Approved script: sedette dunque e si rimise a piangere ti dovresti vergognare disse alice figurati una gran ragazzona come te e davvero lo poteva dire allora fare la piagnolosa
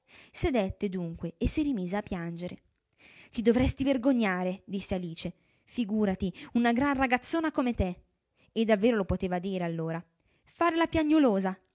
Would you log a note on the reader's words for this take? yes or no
no